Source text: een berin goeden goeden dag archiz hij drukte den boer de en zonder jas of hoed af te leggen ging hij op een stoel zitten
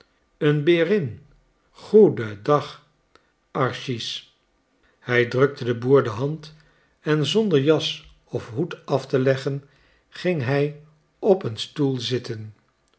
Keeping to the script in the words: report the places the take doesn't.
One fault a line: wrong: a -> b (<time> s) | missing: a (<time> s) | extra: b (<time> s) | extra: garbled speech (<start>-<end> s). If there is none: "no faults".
missing: goeden (2.4 s)
extra: hand (6.1 s)